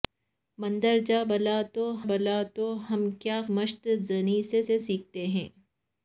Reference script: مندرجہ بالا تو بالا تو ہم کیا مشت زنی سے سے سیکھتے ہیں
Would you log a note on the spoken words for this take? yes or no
no